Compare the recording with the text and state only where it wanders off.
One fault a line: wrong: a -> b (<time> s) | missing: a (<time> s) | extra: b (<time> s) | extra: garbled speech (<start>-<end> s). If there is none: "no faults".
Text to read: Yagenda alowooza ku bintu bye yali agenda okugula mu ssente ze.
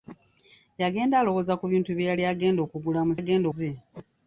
wrong: ssente -> agenda (3.2 s)